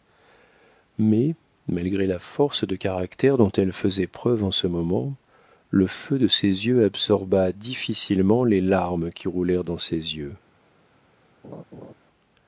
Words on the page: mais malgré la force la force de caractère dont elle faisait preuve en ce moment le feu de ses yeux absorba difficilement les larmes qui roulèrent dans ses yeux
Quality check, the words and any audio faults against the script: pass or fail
fail